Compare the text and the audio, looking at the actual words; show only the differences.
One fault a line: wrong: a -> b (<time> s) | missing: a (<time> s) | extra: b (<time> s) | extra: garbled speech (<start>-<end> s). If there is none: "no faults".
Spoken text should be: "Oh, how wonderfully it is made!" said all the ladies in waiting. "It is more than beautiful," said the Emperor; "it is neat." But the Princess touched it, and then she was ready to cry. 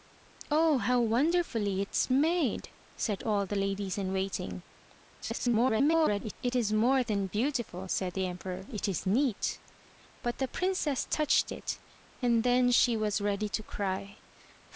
extra: garbled speech (5.2-6.3 s)